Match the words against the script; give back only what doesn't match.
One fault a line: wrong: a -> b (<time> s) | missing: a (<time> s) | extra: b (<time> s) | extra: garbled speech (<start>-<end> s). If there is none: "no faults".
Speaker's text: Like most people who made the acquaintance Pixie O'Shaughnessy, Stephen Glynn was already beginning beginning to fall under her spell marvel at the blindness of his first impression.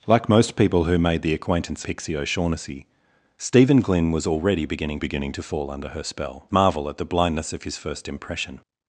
no faults